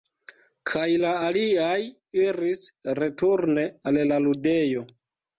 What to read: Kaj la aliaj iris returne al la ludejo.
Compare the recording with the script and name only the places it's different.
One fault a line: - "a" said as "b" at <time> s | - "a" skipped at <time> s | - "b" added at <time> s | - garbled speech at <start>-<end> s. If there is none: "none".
none